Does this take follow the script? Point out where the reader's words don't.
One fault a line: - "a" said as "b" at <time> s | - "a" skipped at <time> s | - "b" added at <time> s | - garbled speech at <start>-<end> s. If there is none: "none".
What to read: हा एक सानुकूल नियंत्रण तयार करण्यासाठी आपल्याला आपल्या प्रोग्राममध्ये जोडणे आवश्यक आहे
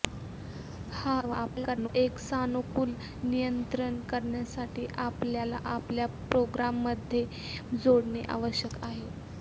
- garbled speech at 1.2-1.9 s
- "तयार" skipped at 4.0 s